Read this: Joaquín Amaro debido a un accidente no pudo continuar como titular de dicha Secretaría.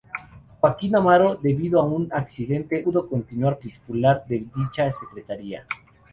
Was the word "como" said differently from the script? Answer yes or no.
yes